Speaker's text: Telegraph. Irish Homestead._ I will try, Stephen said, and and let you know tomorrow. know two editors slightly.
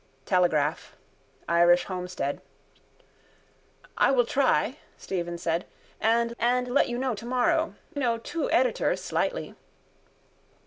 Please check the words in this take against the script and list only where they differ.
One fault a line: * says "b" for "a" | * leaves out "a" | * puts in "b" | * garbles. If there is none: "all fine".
all fine